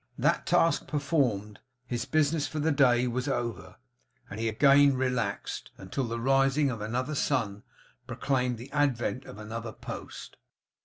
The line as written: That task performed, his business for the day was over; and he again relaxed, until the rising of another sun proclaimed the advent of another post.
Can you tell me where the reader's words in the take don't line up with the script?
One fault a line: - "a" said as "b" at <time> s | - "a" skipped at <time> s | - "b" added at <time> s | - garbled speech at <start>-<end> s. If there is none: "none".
none